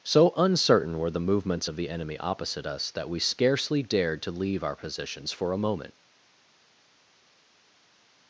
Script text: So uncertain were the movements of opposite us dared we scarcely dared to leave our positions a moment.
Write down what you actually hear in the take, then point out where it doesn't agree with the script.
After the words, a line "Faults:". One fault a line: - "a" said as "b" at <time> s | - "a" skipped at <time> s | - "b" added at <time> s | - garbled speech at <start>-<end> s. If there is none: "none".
So uncertain were the movements of the enemy opposite us that we scarcely dared to leave our positions for a moment.
Faults:
- "the enemy" added at 1.7 s
- "dared" said as "that" at 2.9 s
- "for" added at 5.3 s